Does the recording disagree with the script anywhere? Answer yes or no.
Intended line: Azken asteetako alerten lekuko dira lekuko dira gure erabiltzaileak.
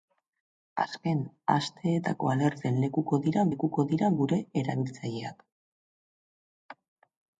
no